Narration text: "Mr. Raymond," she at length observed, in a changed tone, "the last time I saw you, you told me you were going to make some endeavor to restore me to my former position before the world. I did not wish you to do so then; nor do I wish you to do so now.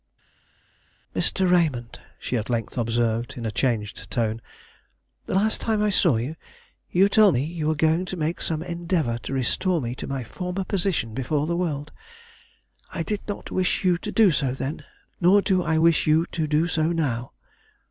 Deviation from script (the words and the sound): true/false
false